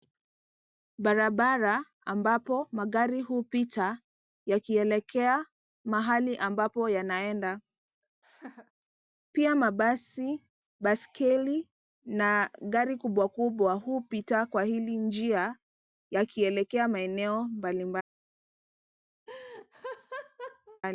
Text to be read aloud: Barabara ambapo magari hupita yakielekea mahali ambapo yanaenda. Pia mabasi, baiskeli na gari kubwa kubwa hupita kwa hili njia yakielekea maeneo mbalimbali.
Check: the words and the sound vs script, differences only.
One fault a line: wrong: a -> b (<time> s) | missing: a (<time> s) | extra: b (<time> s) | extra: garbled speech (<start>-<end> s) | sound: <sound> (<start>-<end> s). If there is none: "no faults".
sound: laugh (8.2-8.7 s)
sound: laugh (19.3-20.8 s)